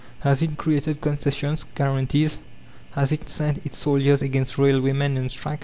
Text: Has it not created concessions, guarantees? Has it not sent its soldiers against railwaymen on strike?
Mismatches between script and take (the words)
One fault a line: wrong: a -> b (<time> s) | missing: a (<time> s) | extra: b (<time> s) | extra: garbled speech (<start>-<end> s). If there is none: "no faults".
missing: not (0.6 s)
missing: not (3.3 s)